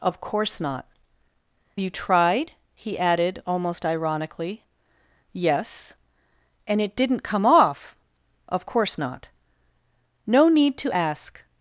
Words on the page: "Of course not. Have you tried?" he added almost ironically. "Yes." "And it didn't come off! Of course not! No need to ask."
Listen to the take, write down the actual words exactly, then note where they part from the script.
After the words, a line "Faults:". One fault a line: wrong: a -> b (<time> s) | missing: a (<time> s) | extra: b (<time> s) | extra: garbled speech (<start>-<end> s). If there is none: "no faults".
"Of course not. You tried?" he added almost ironically. "Yes." "And it didn't come off! Of course not! No need to ask."
Faults:
missing: Have (0.9 s)